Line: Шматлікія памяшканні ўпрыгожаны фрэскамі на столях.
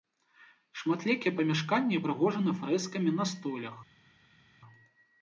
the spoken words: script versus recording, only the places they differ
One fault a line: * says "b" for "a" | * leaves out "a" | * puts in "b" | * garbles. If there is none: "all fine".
all fine